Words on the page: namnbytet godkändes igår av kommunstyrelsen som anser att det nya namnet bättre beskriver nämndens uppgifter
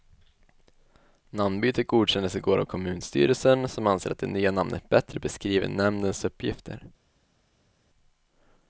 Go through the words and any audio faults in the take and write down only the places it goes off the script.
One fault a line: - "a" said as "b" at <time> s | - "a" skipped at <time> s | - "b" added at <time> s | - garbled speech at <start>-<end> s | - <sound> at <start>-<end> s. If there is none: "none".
none